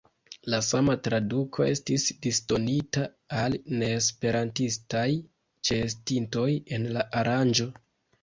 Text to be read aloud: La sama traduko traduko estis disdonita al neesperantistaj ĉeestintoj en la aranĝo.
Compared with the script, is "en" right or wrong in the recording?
right